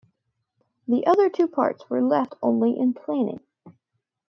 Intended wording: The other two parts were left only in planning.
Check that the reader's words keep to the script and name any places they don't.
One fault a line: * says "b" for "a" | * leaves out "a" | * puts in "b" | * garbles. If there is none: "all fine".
all fine